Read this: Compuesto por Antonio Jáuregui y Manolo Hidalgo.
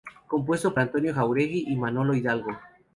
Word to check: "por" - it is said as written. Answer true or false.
false